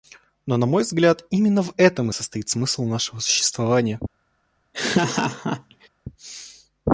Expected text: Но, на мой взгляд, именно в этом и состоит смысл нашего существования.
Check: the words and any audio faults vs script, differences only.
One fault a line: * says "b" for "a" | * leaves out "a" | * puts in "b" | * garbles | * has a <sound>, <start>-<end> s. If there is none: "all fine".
* has a laugh, 4.7-5.9 s